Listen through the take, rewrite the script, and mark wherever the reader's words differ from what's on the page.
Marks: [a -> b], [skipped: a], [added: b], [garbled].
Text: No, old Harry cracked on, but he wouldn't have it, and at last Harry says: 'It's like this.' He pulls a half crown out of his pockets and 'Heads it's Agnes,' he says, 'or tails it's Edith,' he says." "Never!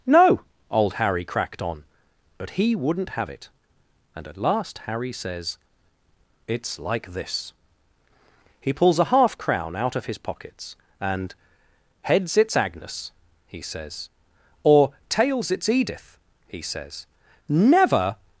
No, old Harry cracked on, but he wouldn't have it, and at last Harry says: 'It's like this.' He pulls a half crown out of his pockets and 'Heads it's Agnes,' he says, 'or tails it's Edith,' he says." "Never!